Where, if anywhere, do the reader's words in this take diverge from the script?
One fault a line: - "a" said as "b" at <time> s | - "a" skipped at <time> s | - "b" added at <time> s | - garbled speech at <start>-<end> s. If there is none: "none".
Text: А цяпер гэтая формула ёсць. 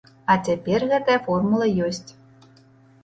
none